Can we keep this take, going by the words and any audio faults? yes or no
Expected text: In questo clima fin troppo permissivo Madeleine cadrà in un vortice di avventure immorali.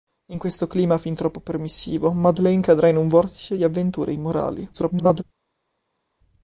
no